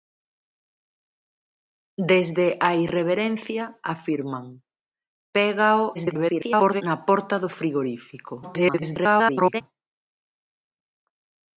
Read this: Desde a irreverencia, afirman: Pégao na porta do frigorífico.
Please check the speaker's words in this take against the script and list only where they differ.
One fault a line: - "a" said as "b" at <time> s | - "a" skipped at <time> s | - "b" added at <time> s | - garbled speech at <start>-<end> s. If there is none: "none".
- garbled speech at 5.9-6.8 s
- garbled speech at 8.4-9.6 s